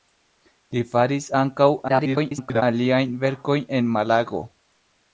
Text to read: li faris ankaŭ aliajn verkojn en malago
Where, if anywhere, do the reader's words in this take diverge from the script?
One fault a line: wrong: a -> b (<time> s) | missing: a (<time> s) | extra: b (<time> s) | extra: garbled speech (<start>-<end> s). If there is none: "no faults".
extra: garbled speech (1.9-2.6 s)